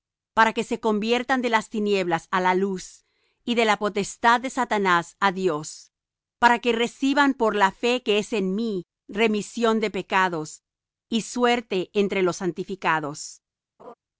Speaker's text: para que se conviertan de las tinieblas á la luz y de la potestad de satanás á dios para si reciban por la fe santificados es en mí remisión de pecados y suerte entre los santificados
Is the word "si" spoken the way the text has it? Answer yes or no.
no